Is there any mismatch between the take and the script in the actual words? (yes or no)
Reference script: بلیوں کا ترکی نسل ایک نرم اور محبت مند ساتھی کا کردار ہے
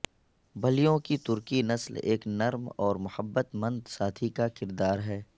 yes